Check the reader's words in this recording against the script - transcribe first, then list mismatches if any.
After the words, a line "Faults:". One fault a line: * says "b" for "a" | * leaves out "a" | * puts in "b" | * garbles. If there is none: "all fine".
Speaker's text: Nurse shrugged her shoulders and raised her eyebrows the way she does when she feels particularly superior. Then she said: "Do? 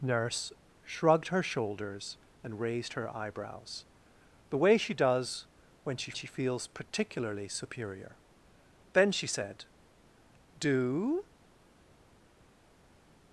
Nurse shrugged her shoulders and raised her eyebrows the way she does when she she feels particularly superior. Then she said: "Do?
Faults:
* puts in "she"